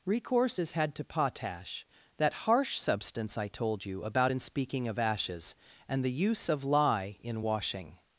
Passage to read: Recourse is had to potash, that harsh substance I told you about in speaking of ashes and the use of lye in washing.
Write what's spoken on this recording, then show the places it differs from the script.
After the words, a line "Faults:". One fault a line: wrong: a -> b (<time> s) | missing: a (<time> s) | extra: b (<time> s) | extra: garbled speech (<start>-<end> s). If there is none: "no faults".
Recourse is had to potash, that harsh substance I told you about in speaking of ashes and the use of lye in washing.
Faults:
no faults